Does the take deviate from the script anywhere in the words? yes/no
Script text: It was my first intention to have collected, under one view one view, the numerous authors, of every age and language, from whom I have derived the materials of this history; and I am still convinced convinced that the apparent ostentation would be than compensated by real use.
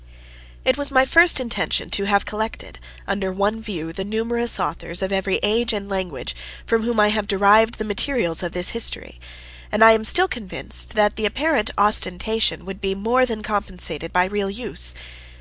yes